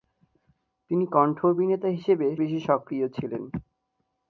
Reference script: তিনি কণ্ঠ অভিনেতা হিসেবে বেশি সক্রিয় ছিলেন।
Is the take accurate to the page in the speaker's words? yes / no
yes